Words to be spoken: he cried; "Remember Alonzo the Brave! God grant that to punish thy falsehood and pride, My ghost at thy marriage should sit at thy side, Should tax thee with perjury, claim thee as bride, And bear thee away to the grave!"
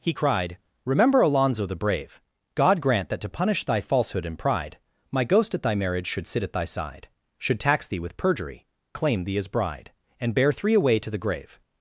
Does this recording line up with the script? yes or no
no